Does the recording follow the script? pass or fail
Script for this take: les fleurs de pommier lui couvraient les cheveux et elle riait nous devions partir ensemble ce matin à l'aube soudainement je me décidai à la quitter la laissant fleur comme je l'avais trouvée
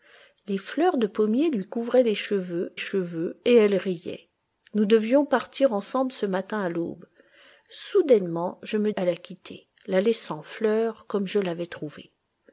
fail